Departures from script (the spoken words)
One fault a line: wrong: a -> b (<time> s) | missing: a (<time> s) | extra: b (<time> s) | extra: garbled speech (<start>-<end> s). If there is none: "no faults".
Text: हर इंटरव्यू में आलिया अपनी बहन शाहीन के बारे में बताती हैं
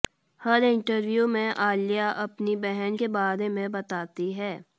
missing: शाहीन (3.0 s)